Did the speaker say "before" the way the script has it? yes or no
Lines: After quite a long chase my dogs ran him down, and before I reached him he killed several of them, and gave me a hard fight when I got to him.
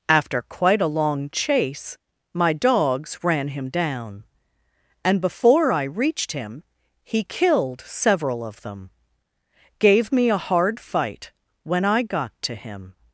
yes